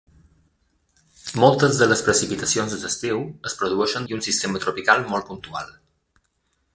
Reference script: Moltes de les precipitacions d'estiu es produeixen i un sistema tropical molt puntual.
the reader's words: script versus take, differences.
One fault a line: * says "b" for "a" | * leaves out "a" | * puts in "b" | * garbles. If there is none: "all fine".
all fine